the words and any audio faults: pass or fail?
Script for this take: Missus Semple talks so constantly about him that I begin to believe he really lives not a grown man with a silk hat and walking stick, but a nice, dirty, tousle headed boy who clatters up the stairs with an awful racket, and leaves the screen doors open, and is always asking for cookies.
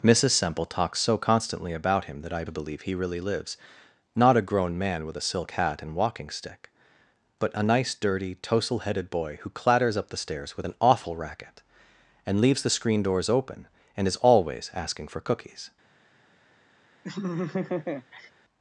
fail